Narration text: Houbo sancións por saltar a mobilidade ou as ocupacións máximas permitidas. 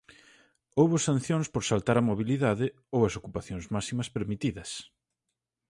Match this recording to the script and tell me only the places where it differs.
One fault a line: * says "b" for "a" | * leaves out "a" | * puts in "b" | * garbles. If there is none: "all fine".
all fine